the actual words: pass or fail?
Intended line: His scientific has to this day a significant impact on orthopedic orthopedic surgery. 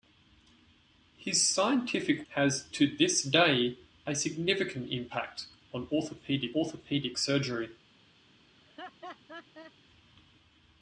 pass